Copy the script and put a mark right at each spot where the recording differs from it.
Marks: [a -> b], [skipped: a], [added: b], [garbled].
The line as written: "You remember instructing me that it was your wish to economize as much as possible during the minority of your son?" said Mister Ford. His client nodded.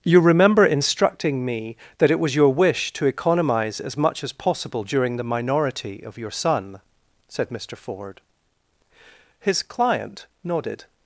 "You remember instructing me that it was your wish to economize as much as possible during the minority of your son?" said Mister Ford. His client nodded.